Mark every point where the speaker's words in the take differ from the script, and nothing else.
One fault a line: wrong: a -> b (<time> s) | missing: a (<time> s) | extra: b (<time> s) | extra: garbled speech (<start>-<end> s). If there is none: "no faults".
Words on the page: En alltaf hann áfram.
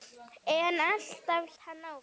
no faults